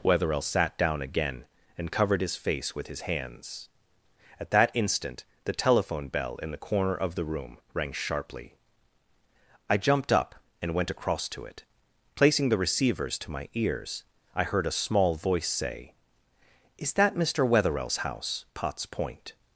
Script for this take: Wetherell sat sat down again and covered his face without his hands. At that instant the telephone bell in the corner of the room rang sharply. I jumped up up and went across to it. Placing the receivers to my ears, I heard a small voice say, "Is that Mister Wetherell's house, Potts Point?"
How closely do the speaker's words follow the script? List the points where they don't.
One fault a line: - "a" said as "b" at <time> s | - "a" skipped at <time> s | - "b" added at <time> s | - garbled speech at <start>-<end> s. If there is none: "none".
- "sat" skipped at 0.8 s
- "without" said as "with" at 2.8 s
- "up" skipped at 10.3 s